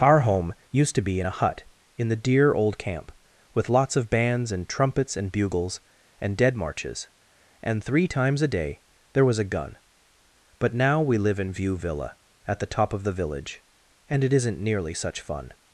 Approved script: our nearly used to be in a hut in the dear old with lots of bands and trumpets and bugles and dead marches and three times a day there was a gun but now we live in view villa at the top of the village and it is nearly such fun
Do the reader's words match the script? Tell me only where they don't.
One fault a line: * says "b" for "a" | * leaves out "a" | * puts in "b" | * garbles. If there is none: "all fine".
* says "home" for "nearly"
* puts in "camp"
* says "isn't" for "is"